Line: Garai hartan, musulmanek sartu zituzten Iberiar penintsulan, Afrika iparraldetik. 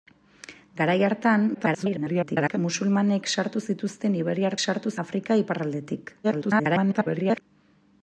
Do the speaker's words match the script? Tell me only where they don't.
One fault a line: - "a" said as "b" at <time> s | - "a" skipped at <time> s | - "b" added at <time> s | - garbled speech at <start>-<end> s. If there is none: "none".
- garbled speech at 1.5-2.6 s
- "penintsulan" said as "sartu" at 4.6 s
- garbled speech at 6.2-7.4 s